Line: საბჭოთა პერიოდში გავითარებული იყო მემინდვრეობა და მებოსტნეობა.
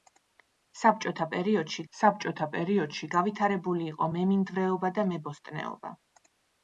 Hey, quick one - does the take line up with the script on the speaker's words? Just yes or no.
no